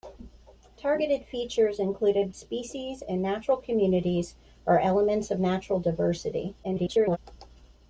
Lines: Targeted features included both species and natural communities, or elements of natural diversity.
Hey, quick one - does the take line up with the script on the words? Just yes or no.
no